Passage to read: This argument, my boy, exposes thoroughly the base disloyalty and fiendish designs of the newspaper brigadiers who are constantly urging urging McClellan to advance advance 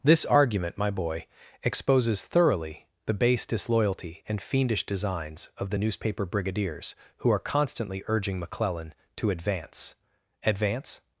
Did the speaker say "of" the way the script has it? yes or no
yes